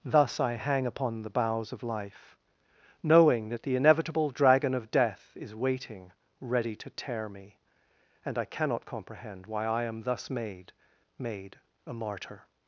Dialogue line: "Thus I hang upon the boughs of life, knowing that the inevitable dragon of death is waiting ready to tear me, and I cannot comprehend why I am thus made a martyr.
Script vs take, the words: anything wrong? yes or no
yes